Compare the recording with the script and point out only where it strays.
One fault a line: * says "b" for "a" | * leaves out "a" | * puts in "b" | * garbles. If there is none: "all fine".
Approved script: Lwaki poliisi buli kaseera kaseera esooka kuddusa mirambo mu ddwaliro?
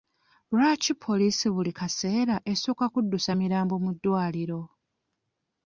* leaves out "kaseera"